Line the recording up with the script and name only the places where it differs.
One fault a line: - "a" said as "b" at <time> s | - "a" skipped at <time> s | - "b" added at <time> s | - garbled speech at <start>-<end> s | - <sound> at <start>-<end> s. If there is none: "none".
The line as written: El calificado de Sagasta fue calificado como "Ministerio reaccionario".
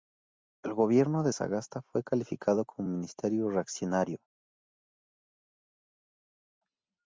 - "calificado" said as "gobierno" at 0.7 s